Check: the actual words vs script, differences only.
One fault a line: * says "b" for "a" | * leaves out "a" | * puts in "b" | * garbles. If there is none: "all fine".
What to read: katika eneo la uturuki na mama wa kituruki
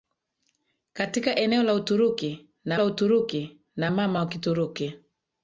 * puts in "la uturuki na"